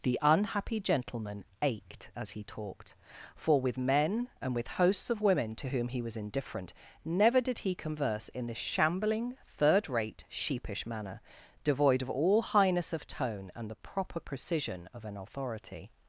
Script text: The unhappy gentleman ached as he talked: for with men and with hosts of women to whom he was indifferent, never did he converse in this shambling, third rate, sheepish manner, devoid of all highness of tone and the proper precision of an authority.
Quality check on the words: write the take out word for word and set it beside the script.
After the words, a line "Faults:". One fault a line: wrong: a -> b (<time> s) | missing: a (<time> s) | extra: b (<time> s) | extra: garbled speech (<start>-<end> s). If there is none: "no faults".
The unhappy gentleman ached as he talked: for with men and with hosts of women to whom he was indifferent, never did he converse in this shambling, third rate, sheepish manner, devoid of all highness of tone and the proper precision of an authority.
Faults:
no faults